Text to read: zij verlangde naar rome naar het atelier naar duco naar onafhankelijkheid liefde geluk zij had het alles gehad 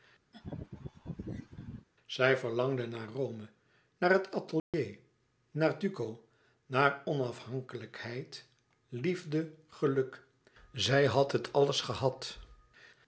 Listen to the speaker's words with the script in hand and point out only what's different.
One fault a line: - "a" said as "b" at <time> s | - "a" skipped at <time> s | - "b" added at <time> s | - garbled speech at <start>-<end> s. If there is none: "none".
none